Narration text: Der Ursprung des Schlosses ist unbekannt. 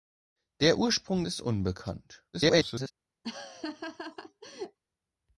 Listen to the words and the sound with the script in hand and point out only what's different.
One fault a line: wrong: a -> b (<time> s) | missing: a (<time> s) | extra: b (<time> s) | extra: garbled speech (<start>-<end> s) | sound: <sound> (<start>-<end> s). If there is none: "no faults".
missing: des Schlosses (1.2 s)
extra: garbled speech (2.3-2.9 s)
sound: laugh (3.2-4.8 s)